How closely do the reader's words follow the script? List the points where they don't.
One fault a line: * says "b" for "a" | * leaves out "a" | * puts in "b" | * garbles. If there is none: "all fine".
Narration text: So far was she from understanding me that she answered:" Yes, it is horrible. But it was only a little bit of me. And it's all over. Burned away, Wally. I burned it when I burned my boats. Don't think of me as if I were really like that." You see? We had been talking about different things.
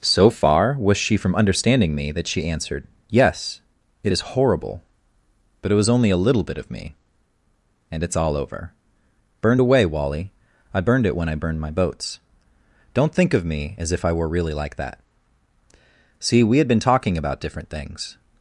* leaves out "You"